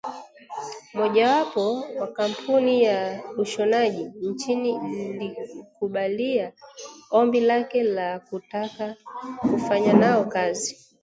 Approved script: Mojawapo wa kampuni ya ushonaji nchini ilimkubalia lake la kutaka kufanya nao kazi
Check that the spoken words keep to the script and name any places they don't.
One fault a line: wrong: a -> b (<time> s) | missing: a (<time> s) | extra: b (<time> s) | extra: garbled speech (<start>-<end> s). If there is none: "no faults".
extra: ombi (7.1 s)